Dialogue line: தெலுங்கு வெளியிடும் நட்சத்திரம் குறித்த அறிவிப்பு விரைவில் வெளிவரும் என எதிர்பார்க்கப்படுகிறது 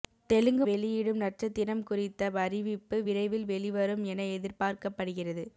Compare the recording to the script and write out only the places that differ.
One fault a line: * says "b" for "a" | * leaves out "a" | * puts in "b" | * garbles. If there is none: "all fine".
all fine